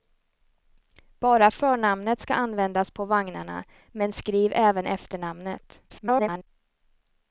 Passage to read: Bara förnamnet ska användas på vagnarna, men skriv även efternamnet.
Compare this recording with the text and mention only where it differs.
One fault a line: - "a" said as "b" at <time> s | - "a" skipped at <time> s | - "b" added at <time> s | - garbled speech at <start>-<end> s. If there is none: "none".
- garbled speech at 5.9-6.5 s